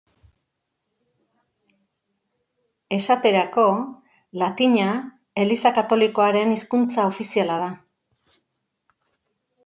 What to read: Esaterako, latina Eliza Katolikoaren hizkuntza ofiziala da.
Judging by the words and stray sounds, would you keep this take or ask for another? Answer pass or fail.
pass